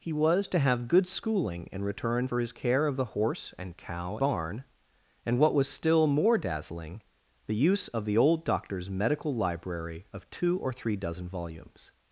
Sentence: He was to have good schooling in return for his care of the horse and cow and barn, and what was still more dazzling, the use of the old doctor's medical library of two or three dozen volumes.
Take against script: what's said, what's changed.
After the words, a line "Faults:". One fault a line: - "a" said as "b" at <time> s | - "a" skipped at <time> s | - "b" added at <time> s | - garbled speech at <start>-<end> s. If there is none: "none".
He was to have good schooling in return for his care of the horse and cow barn, and what was still more dazzling, the use of the old doctor's medical library of two or three dozen volumes.
Faults:
- "and" skipped at 4.2 s